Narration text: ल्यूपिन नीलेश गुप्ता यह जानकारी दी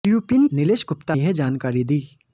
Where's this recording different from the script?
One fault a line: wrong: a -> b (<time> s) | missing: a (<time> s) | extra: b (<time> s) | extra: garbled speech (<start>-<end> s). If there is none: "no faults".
no faults